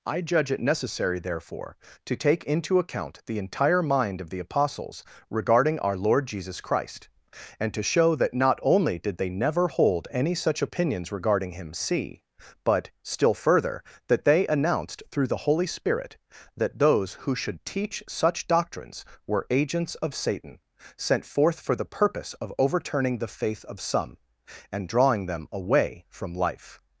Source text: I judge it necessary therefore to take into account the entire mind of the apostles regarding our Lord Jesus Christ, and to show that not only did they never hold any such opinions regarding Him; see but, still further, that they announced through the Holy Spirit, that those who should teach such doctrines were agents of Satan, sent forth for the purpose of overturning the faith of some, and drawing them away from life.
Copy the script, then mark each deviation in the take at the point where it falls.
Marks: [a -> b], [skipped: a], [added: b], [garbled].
I judge it necessary therefore to take into account the entire mind of the apostles regarding our Lord Jesus Christ, and to show that not only did they never hold any such opinions regarding Him; see but, still further, that they announced through the Holy Spirit, that those who should teach such doctrines were agents of Satan, sent forth for the purpose of overturning the faith of some, and drawing them away from life.